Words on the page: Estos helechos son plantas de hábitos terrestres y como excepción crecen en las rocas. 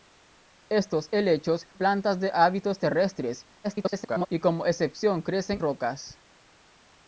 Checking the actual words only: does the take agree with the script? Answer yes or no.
no